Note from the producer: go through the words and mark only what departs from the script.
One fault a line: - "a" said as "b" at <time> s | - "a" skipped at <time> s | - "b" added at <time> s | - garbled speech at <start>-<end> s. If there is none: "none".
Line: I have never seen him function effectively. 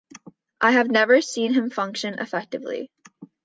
none